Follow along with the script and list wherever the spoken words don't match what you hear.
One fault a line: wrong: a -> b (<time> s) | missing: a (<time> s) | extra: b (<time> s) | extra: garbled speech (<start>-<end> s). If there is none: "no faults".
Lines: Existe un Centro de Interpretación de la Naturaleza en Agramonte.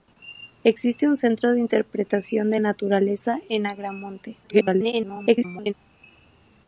missing: la (2.6 s)
extra: garbled speech (4.4-5.7 s)